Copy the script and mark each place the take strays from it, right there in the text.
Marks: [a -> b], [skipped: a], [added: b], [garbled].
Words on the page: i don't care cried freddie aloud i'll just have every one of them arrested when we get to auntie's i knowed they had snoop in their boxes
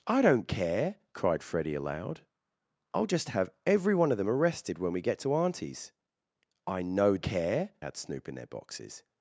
i don't care cried freddie aloud i'll just have every one of them arrested when we get to auntie's i knowed [they -> care] had snoop in their boxes